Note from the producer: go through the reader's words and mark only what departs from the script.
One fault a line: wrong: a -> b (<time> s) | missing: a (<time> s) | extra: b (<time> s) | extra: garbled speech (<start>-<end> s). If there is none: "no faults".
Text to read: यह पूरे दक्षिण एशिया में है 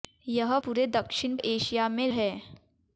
no faults